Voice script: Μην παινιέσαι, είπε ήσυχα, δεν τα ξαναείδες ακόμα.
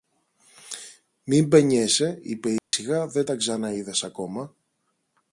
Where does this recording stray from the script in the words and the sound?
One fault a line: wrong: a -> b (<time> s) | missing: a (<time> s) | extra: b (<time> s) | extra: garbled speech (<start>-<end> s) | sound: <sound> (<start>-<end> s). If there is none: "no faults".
sound: dropout (2.6-2.7 s)